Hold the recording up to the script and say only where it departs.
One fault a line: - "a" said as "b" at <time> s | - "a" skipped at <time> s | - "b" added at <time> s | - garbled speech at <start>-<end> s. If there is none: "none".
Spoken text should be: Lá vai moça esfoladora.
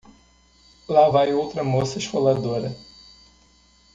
- "outra" added at 1.3 s